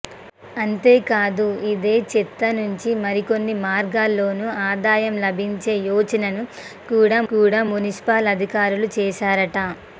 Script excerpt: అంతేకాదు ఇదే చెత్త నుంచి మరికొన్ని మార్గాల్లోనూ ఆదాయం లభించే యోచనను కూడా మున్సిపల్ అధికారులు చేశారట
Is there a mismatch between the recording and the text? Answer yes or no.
yes